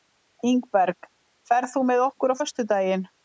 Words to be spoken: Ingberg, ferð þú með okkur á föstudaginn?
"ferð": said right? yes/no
yes